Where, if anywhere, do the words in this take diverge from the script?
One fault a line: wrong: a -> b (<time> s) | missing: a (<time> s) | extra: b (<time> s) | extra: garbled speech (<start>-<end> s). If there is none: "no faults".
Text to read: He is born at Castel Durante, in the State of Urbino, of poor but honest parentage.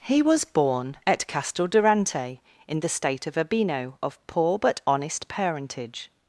wrong: is -> was (0.2 s)